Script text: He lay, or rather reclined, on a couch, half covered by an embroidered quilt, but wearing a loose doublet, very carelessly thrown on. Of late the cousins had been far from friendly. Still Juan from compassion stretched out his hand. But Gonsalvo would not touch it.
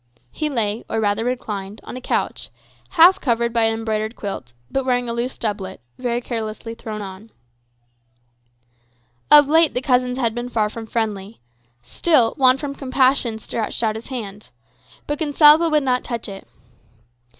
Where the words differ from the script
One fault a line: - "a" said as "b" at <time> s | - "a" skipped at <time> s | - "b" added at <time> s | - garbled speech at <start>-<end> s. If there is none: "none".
none